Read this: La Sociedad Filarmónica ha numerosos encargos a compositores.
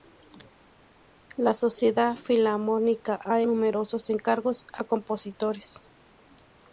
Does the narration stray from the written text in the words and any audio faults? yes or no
no